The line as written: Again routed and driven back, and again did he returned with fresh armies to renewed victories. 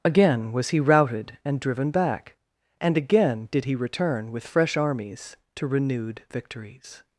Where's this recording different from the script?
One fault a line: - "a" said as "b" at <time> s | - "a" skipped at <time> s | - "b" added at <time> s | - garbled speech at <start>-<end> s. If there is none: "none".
- "was he" added at 0.5 s
- "returned" said as "return" at 3.8 s